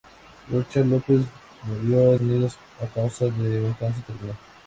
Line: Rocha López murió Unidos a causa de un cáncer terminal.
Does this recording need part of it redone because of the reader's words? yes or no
no